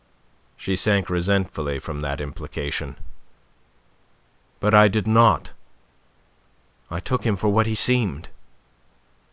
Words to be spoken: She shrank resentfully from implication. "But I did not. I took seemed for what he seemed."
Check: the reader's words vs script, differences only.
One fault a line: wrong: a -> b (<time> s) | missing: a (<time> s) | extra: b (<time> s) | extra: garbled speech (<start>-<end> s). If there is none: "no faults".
extra: that (2.0 s)
wrong: seemed -> him (7.2 s)